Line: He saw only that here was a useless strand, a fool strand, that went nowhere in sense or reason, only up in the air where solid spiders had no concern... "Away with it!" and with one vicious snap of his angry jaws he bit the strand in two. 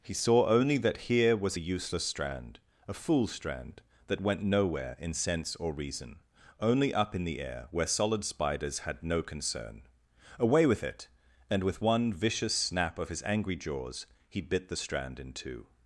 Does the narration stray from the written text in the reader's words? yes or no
no